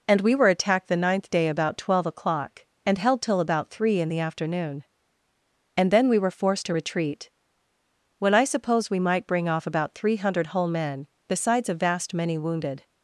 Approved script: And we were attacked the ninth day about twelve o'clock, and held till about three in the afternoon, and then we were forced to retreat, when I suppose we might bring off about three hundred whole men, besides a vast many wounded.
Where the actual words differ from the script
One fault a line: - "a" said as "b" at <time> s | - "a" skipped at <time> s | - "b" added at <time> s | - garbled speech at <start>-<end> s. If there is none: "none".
none